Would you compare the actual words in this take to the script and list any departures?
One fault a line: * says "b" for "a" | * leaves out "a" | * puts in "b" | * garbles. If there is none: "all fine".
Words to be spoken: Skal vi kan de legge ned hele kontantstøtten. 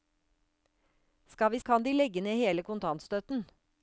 all fine